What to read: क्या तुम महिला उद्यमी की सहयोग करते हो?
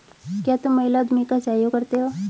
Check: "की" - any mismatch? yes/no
yes